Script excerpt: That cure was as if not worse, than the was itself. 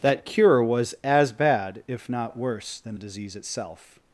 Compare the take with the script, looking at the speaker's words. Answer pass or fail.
fail